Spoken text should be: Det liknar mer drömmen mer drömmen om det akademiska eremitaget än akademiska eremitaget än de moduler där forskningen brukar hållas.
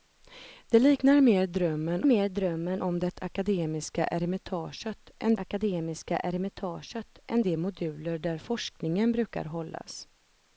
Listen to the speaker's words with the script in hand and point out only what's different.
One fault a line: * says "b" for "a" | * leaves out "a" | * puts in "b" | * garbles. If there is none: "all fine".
all fine